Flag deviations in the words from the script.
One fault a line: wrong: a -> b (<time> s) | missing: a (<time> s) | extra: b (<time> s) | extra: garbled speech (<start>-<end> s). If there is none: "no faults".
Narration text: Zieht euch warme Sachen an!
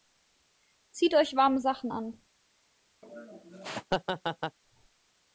no faults